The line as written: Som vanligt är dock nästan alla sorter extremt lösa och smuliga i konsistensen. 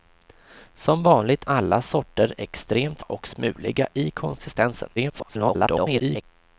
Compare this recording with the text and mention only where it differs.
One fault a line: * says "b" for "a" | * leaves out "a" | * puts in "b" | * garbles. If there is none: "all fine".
* leaves out "är dock nästan"
* leaves out "lösa"
* garbles